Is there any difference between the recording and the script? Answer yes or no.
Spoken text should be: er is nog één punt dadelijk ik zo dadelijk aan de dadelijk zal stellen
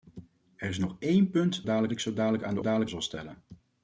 no